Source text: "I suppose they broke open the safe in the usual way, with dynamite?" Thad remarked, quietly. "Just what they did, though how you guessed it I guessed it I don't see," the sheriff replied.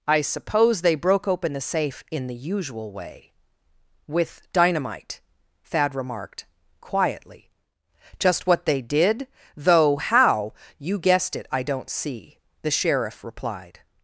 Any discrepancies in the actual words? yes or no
yes